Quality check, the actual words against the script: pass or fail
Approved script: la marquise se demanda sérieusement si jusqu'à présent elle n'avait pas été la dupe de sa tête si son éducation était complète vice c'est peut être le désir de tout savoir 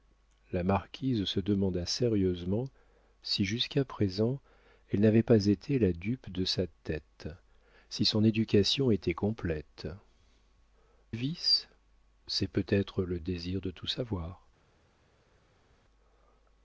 pass